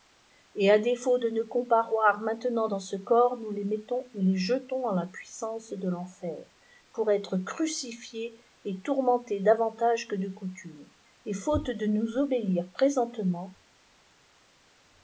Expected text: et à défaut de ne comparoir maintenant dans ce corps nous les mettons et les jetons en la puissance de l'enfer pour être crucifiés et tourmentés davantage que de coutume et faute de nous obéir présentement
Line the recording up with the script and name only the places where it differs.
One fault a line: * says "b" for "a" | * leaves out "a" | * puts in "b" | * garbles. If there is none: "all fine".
all fine